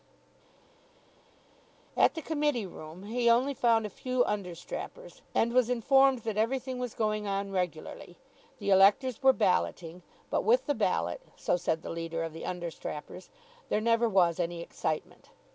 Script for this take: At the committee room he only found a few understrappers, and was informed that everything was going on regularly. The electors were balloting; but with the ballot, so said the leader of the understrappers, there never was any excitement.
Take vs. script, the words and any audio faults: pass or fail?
pass